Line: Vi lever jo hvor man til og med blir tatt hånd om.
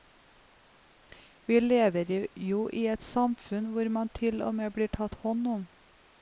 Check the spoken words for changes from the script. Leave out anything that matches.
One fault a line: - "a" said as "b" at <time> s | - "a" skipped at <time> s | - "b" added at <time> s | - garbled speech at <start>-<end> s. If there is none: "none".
- "i et samfunn" added at 2.7 s